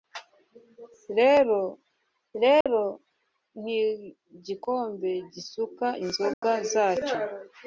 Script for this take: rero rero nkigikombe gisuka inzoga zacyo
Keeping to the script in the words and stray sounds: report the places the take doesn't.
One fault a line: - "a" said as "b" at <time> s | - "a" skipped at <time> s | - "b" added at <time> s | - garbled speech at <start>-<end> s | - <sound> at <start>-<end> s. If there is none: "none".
- dropout at 2.6-2.7 s
- dropout at 6.3-6.4 s